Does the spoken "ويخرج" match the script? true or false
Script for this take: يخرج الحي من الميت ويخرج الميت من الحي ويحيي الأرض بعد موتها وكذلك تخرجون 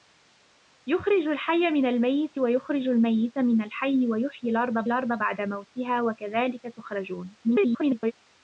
true